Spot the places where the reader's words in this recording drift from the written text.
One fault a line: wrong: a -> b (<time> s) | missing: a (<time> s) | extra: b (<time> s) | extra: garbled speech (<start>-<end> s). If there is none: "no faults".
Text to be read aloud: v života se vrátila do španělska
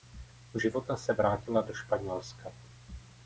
no faults